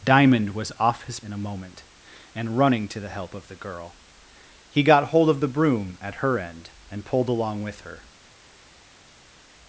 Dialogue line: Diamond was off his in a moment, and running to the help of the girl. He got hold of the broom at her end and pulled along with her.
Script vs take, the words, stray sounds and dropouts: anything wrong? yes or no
no